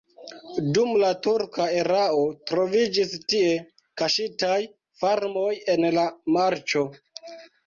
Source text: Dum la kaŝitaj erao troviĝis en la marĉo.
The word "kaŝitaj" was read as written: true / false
false